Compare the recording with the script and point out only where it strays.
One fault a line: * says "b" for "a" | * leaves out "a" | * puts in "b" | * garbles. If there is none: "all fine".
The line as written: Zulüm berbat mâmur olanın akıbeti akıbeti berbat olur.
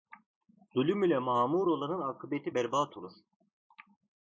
* says "ile" for "berbat"
* leaves out "akıbeti"